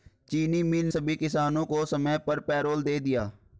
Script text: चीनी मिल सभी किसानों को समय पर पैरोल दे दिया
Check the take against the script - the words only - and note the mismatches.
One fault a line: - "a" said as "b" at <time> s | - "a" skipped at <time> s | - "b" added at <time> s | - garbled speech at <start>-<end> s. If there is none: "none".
none